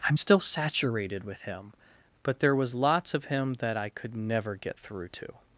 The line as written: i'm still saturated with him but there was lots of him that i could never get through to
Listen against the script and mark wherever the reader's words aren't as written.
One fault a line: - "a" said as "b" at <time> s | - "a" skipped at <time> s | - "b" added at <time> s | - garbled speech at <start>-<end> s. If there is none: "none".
none